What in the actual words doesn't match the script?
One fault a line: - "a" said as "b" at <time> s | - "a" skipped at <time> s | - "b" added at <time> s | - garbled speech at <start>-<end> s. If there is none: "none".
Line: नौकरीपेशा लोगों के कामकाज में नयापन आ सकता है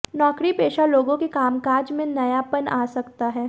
none